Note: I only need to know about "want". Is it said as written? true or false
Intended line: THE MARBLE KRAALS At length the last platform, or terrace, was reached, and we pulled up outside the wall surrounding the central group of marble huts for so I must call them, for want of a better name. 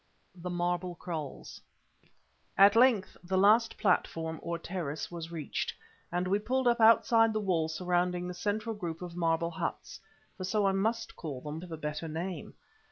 false